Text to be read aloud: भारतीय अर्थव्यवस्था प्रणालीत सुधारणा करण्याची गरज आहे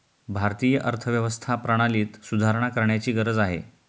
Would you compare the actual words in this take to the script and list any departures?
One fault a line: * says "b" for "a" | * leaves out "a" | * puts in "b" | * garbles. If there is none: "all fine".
all fine